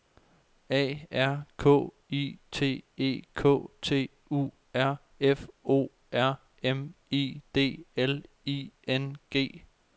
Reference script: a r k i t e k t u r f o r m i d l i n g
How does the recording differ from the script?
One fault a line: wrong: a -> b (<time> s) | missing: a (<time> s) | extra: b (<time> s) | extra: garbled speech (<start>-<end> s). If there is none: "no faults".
no faults